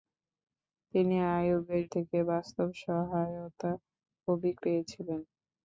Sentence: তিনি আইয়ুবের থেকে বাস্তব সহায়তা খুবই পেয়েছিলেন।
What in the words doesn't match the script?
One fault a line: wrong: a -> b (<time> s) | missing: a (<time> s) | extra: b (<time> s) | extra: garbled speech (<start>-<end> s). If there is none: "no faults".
no faults